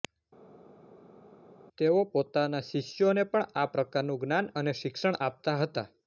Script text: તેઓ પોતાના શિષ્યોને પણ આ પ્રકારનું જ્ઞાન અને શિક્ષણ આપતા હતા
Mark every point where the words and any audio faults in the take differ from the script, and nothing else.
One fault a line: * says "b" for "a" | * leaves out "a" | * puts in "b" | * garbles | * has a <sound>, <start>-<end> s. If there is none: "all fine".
all fine